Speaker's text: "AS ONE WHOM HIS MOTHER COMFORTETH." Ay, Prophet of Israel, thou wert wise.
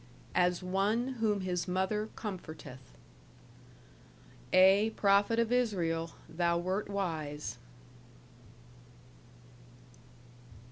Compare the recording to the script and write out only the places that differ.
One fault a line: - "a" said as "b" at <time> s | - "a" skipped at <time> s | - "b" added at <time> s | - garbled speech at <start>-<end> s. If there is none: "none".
none